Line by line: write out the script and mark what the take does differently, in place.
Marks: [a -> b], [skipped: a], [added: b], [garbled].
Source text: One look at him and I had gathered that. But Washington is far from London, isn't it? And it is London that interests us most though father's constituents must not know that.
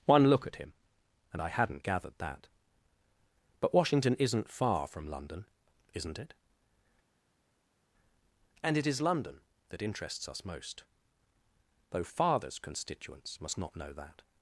One look at him and I [had -> hadn't] gathered that. But Washington [is -> isn't] far from London, isn't it? And it is London that interests us most though father's constituents must not know that.